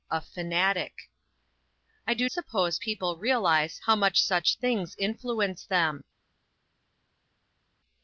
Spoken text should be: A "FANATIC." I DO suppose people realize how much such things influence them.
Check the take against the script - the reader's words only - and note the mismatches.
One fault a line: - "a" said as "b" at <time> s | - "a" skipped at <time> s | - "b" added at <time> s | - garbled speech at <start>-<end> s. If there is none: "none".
none